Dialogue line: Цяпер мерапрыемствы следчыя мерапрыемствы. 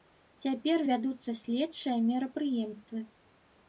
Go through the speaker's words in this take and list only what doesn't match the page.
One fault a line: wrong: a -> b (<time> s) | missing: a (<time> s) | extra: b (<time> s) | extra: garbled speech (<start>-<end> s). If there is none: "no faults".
wrong: мерапрыемствы -> вядуцца (0.9 s)